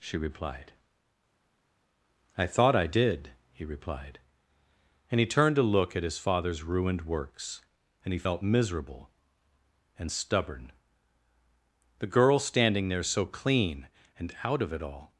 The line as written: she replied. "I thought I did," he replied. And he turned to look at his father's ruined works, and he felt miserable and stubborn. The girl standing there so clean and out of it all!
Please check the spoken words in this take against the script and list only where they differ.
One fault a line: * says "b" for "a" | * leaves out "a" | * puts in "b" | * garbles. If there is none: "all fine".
all fine